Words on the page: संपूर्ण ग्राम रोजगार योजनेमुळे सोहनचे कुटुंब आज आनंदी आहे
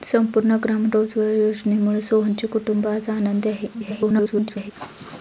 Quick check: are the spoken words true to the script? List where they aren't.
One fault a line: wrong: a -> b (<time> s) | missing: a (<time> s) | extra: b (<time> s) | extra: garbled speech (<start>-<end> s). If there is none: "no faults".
extra: garbled speech (3.7-4.7 s)